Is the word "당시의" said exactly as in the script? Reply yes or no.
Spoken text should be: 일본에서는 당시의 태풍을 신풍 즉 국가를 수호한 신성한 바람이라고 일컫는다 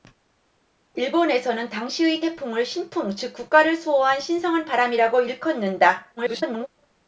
yes